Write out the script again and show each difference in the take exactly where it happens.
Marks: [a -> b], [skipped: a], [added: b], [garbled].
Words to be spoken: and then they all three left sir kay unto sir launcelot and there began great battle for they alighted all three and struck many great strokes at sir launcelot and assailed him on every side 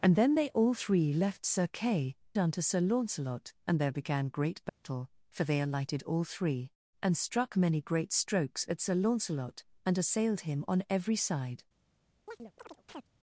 and then they all three left sir kay unto sir launcelot and there began great battle for they alighted all three and struck many great strokes at sir launcelot and assailed him on every side